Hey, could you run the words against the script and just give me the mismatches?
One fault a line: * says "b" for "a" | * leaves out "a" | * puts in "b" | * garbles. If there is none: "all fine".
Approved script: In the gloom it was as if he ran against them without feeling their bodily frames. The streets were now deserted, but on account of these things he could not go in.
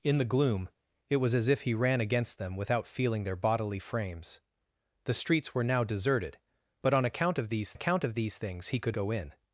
* puts in "account of these"
* leaves out "not"